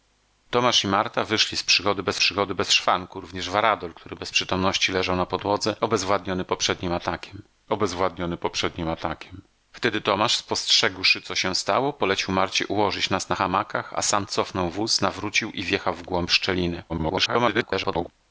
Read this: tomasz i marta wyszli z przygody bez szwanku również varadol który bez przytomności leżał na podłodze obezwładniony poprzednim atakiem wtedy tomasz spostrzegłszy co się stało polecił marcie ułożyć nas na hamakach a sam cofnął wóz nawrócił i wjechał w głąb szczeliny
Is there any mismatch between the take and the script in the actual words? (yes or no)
yes